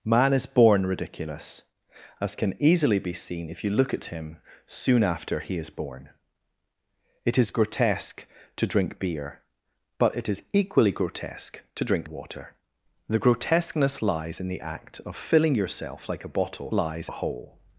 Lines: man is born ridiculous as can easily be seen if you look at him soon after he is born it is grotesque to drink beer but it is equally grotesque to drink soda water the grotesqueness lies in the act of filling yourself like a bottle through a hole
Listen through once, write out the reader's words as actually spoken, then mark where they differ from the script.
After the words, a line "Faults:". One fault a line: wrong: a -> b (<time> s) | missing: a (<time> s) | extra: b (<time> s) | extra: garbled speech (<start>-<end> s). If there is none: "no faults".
man is born ridiculous as can easily be seen if you look at him soon after he is born it is grotesque to drink beer but it is equally grotesque to drink water the grotesqueness lies in the act of filling yourself like a bottle lies a hole
Faults:
missing: soda (12.1 s)
wrong: through -> lies (16.7 s)